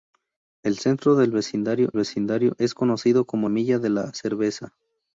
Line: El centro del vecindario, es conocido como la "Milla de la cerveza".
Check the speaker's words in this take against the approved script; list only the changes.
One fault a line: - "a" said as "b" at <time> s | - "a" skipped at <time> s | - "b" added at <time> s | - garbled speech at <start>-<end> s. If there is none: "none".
- "vecindario" added at 1.9 s
- "la" skipped at 3.5 s